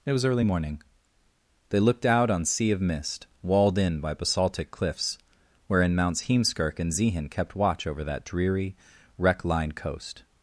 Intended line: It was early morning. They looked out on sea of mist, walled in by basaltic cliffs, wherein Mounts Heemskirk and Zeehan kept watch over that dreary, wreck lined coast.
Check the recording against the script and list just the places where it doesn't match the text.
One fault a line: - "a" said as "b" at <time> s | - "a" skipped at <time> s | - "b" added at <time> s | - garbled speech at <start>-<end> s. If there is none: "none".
none